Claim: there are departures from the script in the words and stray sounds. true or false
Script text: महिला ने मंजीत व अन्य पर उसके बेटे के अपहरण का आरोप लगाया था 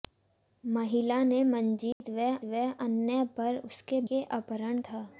true